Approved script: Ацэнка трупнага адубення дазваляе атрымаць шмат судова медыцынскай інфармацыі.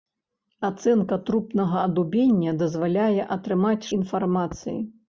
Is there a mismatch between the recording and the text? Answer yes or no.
yes